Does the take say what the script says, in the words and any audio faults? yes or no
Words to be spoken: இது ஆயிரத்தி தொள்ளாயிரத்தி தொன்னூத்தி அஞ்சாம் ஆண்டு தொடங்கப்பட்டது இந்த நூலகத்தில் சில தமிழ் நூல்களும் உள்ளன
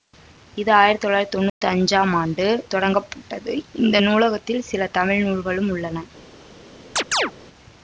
no